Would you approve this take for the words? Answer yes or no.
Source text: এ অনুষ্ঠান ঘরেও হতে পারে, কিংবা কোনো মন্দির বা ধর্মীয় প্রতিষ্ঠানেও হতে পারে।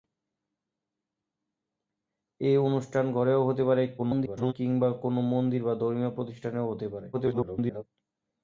no